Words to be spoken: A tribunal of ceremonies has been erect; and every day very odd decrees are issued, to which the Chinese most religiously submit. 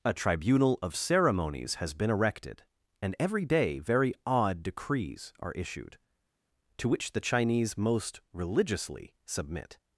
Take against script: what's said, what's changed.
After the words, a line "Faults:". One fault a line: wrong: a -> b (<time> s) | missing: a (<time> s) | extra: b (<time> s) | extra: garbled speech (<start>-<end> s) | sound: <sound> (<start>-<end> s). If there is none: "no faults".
A tribunal of ceremonies has been erected; and every day very odd decrees are issued, to which the Chinese most religiously submit.
Faults:
wrong: erect -> erected (2.1 s)